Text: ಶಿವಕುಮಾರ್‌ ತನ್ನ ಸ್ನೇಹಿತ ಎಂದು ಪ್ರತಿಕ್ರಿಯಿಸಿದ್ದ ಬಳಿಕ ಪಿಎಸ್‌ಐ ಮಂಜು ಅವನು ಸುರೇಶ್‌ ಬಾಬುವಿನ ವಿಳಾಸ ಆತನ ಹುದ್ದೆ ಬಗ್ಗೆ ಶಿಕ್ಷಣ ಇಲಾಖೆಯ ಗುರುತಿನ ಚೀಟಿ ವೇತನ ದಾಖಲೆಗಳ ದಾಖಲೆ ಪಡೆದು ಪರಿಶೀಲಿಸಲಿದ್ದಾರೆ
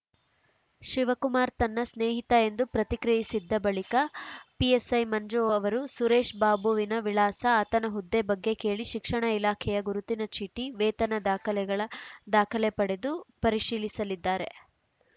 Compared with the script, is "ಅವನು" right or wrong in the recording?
wrong